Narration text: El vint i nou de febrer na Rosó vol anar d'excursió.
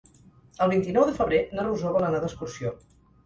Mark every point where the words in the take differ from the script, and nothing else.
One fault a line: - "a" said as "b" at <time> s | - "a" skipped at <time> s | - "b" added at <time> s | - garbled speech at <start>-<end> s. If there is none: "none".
none